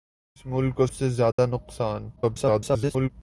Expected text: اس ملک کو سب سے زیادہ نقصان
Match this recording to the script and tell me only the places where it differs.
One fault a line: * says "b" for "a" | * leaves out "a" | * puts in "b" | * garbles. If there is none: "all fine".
* leaves out "سب"
* garbles